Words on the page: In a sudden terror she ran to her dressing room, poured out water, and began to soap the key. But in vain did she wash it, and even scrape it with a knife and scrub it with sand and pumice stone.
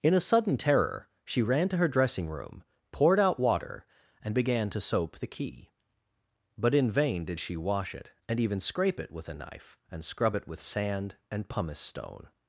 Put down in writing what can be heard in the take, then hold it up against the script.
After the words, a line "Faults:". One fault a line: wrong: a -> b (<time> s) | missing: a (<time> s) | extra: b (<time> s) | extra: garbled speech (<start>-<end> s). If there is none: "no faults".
In a sudden terror she ran to her dressing room, poured out water, and began to soap the key. But in vain did she wash it, and even scrape it with a knife and scrub it with sand and pumice stone.
Faults:
no faults